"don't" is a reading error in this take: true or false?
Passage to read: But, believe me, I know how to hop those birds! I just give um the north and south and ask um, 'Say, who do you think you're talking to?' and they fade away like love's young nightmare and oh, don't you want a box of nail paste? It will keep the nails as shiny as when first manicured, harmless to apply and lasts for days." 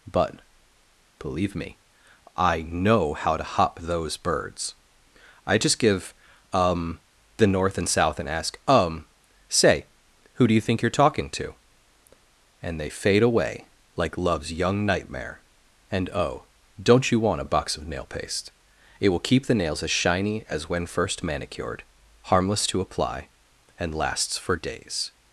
false